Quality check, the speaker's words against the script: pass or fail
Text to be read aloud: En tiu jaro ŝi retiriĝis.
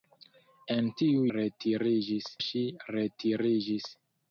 fail